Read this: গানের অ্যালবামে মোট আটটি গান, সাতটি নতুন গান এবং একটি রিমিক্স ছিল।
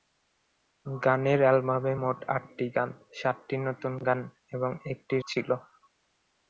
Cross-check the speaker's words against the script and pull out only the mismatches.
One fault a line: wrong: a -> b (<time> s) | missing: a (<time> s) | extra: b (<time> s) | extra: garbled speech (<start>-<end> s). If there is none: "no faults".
missing: রিমিক্স (5.2 s)